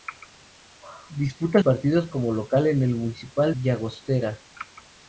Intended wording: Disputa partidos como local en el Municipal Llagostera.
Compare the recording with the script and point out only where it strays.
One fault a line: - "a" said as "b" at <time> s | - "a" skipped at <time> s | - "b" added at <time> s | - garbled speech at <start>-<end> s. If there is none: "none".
none